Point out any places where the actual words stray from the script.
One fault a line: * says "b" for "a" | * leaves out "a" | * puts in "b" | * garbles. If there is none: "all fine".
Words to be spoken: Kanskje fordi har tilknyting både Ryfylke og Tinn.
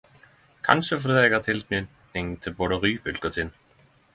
* puts in "eg"
* puts in "til"